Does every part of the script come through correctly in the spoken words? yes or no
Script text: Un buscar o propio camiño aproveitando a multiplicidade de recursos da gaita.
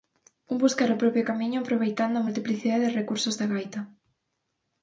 yes